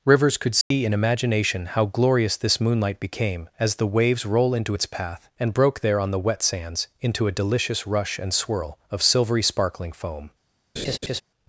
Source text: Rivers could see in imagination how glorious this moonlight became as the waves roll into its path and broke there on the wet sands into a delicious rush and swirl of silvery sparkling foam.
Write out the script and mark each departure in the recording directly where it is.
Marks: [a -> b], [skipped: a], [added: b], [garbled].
Rivers could see in imagination how glorious this moonlight became as the waves roll into its path and broke there on the wet sands into a delicious rush and swirl of silvery sparkling foam.